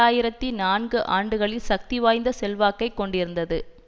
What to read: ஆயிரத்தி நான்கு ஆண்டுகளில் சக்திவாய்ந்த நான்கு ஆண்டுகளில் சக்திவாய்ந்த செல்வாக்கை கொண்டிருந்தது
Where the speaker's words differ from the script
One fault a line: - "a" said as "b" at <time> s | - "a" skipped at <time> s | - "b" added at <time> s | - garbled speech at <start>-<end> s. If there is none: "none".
- "நான்கு ஆண்டுகளில் சக்திவாய்ந்த" skipped at 2.3 s